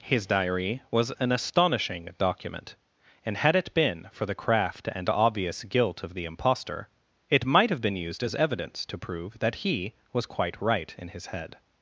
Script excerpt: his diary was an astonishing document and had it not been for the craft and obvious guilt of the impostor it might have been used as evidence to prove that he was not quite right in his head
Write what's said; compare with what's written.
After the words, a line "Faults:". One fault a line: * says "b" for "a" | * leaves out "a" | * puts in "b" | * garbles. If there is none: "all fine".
his diary was an astonishing document and had it been for the craft and obvious guilt of the impostor it might have been used as evidence to prove that he was quite right in his head
Faults:
* leaves out "not"
* leaves out "not"